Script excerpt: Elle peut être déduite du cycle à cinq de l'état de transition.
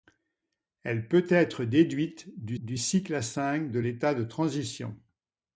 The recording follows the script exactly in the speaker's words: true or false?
false